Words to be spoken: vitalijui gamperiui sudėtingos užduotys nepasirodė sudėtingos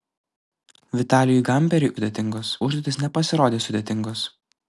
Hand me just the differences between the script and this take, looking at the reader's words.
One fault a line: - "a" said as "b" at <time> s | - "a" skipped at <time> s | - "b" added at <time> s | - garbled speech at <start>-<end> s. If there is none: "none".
none